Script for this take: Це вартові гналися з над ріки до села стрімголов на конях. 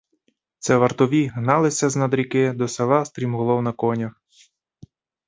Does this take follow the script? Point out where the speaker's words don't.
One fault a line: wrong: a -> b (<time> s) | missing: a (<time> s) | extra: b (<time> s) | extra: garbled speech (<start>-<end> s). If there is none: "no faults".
no faults